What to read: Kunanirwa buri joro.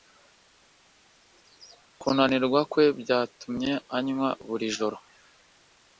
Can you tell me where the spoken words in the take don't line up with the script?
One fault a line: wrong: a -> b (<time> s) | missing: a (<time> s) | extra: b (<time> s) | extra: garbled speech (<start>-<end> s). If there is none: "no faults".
extra: kwe byatumye anywa (2.7 s)